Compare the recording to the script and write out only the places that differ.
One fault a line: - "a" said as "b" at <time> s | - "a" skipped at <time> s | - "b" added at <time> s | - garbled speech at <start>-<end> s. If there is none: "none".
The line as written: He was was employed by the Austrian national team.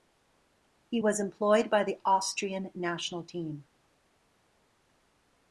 - "was" skipped at 1.2 s